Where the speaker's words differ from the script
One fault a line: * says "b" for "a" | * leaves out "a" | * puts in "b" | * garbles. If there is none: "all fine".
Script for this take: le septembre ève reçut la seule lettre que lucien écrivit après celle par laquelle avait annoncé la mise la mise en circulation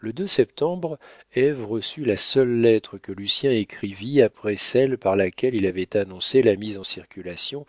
* puts in "il"
* leaves out "la mise"